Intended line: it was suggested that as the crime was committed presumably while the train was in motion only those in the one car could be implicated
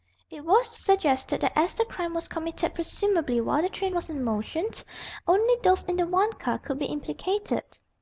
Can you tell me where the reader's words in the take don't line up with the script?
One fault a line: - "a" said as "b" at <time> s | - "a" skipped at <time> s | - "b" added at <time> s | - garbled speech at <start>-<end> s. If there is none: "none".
none